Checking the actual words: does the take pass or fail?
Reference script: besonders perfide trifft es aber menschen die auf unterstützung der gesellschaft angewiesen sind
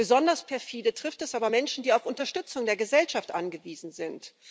pass